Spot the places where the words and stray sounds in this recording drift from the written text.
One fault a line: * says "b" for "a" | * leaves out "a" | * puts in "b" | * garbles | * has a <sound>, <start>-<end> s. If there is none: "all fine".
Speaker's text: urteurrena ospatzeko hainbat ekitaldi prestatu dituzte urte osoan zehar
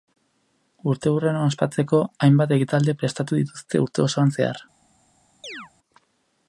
* has a chirp, 5.4-5.7 s